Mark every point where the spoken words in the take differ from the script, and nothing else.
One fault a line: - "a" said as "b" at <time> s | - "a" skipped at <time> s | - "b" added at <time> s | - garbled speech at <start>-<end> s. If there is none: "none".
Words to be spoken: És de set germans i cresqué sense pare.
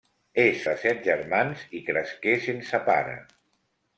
none